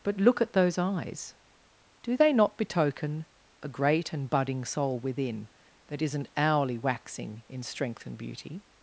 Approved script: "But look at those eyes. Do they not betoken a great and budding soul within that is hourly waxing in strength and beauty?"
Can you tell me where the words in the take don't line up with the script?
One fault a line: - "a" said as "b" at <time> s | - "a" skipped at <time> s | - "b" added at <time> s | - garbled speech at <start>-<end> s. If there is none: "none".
- "is" said as "isn't" at 6.0 s